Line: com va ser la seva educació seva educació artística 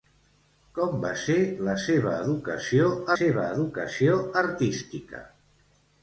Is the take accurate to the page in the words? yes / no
yes